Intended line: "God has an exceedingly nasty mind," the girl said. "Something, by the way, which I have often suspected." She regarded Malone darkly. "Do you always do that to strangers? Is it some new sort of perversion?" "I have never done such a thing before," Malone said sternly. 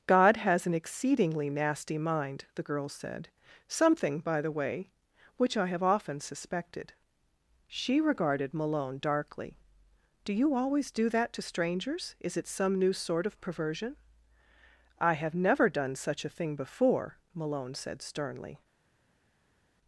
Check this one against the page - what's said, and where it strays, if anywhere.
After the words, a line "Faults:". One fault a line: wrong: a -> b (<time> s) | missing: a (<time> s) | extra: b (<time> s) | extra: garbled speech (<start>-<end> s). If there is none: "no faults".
"God has an exceedingly nasty mind," the girl said. "Something, by the way, which I have often suspected." She regarded Malone darkly. "Do you always do that to strangers? Is it some new sort of perversion?" "I have never done such a thing before," Malone said sternly.
Faults:
no faults